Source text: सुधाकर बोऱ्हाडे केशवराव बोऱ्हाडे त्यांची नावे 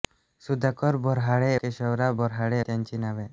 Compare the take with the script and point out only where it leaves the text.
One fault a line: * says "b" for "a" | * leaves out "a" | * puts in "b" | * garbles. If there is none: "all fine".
all fine